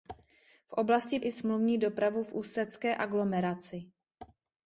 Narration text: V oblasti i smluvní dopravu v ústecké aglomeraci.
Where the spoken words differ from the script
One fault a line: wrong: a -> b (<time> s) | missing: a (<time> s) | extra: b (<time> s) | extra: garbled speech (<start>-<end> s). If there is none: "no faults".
no faults